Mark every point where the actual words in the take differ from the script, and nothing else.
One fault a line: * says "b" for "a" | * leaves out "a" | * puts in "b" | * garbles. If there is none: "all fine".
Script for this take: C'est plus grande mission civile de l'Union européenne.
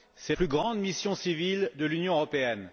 all fine